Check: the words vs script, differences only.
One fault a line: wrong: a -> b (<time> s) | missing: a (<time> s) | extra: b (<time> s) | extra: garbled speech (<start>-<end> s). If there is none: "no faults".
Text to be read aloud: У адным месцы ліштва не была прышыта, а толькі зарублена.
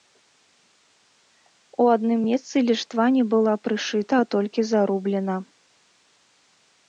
no faults